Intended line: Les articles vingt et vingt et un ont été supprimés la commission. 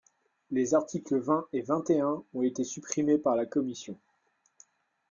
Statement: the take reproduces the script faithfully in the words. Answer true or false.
false